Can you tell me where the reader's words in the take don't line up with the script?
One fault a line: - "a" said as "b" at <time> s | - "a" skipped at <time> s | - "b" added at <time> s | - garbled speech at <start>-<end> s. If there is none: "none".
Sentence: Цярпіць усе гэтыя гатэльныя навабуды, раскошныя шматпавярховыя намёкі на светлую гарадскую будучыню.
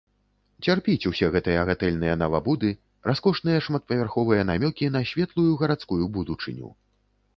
none